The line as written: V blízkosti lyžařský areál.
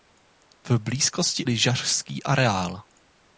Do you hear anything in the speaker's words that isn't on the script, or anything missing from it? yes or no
no